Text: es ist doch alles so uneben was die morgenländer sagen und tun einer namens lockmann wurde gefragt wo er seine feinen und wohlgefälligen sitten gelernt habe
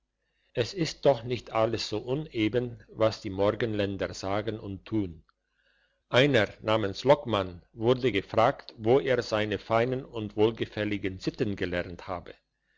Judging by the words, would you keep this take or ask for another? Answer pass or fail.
fail